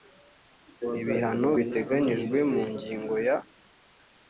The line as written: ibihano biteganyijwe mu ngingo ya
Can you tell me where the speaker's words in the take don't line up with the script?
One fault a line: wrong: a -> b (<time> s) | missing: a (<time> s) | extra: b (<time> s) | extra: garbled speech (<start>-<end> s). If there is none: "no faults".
no faults